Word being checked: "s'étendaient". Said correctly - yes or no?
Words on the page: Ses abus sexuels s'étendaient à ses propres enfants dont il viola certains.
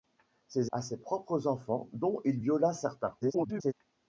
no